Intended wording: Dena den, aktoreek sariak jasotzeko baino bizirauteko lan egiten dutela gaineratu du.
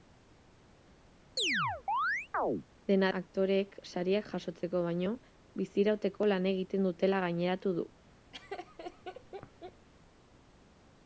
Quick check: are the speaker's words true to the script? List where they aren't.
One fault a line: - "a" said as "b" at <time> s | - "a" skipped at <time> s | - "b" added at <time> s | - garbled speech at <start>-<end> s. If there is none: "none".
- "den" skipped at 3.1 s